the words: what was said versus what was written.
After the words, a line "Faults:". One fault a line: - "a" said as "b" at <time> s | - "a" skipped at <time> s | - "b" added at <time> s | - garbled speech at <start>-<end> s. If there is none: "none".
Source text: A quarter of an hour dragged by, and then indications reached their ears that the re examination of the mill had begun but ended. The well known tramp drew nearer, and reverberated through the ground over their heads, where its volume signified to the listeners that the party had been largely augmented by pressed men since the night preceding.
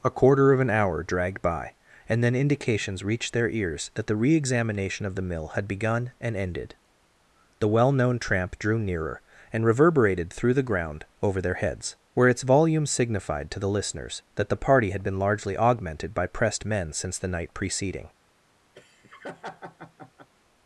A quarter of an hour dragged by, and then indications reached their ears that the re examination of the mill had begun and ended. The well known tramp drew nearer, and reverberated through the ground over their heads, where its volume signified to the listeners that the party had been largely augmented by pressed men since the night preceding.
Faults:
- "but" said as "and" at 6.2 s